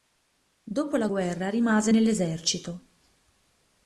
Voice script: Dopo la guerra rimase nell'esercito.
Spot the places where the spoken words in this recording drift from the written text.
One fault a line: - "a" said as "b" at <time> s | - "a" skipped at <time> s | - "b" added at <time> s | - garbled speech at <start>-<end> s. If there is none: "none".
none